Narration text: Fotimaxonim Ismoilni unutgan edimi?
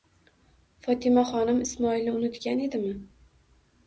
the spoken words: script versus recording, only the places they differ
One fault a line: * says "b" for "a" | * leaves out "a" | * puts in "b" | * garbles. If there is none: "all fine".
all fine